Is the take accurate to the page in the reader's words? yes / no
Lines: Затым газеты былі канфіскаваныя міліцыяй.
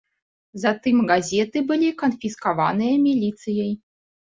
yes